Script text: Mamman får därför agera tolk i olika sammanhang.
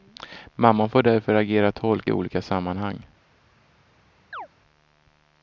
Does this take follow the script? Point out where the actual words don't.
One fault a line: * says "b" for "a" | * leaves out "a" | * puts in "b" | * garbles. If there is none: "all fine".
all fine